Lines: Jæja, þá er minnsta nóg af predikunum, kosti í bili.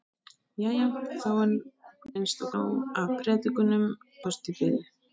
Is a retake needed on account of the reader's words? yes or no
no